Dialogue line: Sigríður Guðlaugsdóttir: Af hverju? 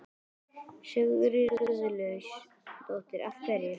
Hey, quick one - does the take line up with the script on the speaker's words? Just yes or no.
yes